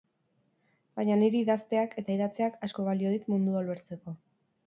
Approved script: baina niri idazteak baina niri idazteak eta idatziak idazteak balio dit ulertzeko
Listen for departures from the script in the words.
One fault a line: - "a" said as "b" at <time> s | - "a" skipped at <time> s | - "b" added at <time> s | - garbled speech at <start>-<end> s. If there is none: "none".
- "baina niri idazteak" skipped at 1.9 s
- "idazteak" said as "asko" at 2.7 s
- "mundua" added at 3.4 s